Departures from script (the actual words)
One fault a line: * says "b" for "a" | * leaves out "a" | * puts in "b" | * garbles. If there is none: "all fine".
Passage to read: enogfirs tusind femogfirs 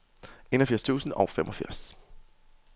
* puts in "og"